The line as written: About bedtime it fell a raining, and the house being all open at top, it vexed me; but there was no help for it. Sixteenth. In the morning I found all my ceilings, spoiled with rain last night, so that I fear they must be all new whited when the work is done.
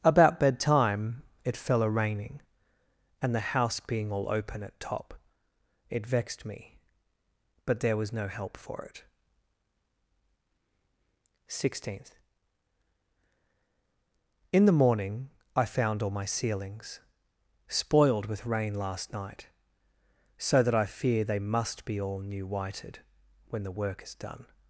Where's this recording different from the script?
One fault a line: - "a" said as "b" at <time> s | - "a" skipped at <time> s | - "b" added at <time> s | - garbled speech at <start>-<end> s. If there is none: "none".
none